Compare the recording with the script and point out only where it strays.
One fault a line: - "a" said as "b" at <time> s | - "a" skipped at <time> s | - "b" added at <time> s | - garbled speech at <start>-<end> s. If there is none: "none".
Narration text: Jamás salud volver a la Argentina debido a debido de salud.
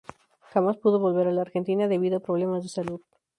- "salud" said as "pudo" at 0.8 s
- "debido" said as "problemas" at 2.2 s